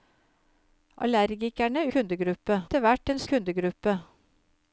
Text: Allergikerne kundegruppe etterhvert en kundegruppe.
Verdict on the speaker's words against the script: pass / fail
pass